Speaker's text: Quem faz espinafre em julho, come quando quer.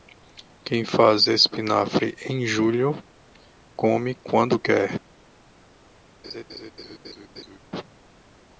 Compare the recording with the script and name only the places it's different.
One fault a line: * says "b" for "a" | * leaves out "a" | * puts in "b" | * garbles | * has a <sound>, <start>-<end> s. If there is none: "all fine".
* has a laugh, 6.2-7.6 s